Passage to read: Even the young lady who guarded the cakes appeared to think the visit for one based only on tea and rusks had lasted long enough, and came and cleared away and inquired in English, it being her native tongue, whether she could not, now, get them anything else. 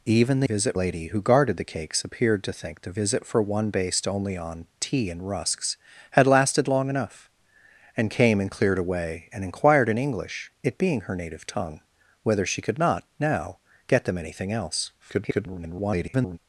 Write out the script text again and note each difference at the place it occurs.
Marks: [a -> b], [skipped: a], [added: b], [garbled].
Even the [young -> visit] lady who guarded the cakes appeared to think the visit for one based only on tea and rusks had lasted long enough, and came and cleared away and inquired in English, it being her native tongue, whether she could not, now, get them anything else. [garbled]